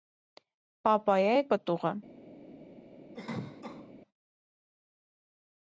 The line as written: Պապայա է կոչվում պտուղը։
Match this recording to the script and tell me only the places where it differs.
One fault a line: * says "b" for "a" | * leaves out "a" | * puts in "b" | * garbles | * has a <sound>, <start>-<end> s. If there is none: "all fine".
* leaves out "կոչվում"
* has a cough, 3.1-3.9 s